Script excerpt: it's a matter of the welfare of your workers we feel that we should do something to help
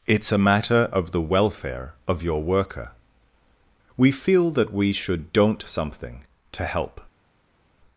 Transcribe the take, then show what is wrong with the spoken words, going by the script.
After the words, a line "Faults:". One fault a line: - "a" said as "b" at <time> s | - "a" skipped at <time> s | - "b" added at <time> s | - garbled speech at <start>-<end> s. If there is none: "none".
it's a matter of the welfare of your worker we feel that we should don't something to help
Faults:
- "workers" said as "worker" at 2.4 s
- "do" said as "don't" at 5.3 s